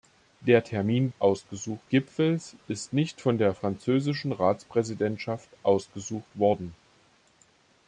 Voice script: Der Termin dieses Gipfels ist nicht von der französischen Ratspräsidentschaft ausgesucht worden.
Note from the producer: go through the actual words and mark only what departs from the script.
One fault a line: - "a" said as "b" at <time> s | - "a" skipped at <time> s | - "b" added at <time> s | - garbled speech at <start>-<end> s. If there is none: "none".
- "dieses" said as "ausgesucht" at 1.2 s